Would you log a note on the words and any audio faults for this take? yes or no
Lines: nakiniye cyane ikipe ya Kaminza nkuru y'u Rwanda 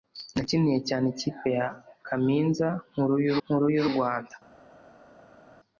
yes